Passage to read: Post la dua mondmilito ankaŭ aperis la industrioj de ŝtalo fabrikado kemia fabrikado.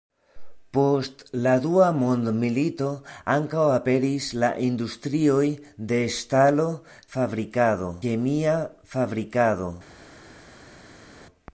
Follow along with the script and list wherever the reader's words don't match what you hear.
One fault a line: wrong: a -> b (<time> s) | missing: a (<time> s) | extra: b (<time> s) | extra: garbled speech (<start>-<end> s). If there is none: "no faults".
no faults